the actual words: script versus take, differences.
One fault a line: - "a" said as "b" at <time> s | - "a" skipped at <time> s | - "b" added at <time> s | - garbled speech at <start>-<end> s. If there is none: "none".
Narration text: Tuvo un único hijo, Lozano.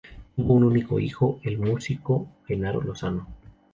- "el músico Genaro" added at 1.4 s